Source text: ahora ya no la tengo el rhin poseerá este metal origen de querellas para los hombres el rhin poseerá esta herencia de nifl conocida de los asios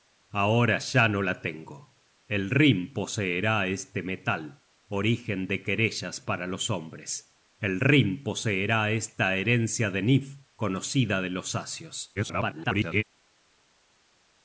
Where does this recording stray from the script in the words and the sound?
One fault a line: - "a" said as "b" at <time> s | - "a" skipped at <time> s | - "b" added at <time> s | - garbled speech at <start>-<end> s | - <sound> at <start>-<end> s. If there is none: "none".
- garbled speech at 12.2-13.0 s